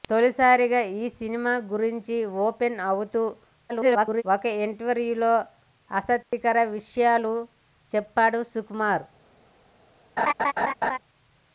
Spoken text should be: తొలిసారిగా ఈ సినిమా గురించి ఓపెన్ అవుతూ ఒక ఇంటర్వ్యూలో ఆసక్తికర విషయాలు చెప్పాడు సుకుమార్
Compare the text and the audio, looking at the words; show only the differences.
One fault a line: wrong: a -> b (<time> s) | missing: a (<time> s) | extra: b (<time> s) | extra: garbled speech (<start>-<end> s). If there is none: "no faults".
extra: garbled speech (3.7-4.2 s)